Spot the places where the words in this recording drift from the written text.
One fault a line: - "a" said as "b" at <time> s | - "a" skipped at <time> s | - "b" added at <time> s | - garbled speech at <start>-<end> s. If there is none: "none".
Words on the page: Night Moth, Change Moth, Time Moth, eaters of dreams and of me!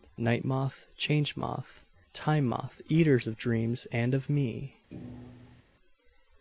none